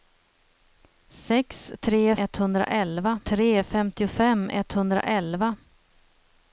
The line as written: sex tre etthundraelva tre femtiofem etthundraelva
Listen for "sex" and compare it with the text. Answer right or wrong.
right